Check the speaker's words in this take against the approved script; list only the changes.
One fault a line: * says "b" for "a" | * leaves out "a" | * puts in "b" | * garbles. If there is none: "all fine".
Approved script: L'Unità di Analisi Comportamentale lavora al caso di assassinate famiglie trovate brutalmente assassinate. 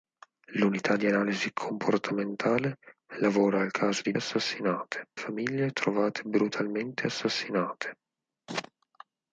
all fine